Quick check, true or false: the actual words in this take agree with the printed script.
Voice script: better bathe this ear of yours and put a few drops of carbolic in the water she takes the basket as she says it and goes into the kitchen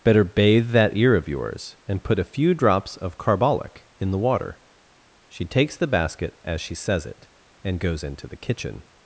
false